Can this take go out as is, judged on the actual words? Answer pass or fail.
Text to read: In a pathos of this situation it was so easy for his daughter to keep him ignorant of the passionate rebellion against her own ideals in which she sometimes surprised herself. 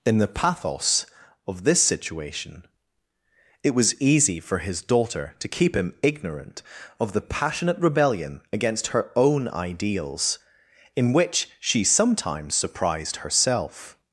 fail